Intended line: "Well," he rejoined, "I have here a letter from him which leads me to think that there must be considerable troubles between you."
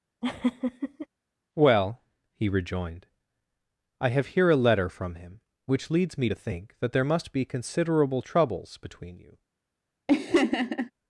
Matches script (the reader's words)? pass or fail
pass